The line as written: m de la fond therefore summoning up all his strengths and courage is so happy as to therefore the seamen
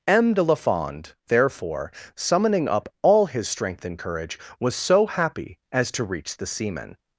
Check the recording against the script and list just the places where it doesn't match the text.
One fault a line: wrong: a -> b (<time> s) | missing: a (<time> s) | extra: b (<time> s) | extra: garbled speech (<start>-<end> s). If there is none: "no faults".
wrong: strengths -> strength (3.5 s)
wrong: is -> was (4.6 s)
wrong: therefore -> reach (6.0 s)